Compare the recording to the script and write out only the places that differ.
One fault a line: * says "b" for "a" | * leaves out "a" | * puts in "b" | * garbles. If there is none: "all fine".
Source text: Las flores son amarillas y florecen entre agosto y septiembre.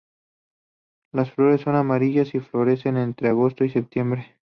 all fine